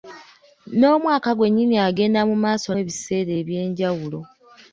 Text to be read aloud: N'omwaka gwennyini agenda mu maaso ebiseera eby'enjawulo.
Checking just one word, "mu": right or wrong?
right